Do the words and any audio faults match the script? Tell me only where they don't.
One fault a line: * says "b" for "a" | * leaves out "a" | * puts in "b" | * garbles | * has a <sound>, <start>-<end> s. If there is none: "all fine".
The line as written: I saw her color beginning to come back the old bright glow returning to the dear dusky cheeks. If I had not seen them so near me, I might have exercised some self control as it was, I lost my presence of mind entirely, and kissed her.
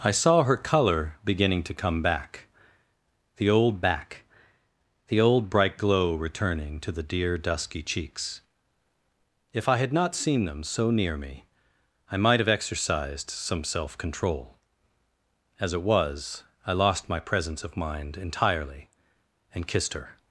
* puts in "back the old"